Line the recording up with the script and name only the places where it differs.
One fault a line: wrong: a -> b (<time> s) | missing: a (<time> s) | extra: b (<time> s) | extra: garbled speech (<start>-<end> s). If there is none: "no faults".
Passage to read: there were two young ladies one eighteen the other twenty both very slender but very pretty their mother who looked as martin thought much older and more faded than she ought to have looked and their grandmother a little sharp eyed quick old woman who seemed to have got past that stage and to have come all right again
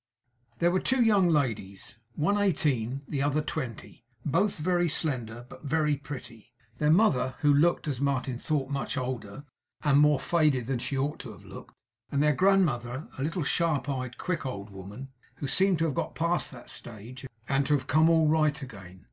no faults